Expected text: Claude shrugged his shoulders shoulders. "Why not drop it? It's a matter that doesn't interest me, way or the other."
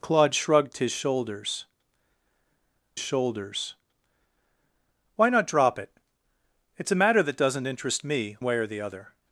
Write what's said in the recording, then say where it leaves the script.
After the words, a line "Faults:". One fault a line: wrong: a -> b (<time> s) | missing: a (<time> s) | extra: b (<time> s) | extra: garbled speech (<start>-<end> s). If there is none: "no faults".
Claude shrugged his shoulders shoulders. "Why not drop it? It's a matter that doesn't interest me, way or the other."
Faults:
no faults